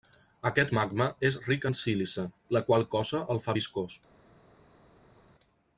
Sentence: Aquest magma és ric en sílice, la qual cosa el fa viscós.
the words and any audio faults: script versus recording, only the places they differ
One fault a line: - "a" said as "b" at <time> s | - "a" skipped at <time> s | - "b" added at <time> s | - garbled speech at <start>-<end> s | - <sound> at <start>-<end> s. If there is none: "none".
none